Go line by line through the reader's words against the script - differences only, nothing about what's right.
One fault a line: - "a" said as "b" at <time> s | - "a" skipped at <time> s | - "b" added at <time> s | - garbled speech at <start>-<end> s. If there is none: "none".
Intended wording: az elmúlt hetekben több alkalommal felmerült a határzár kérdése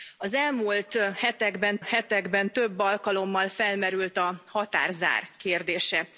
- "hetekben" added at 1.8 s